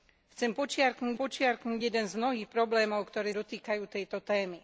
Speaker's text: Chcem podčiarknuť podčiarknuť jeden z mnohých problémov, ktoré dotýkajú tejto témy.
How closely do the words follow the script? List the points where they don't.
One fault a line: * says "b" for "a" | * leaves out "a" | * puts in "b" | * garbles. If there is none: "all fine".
all fine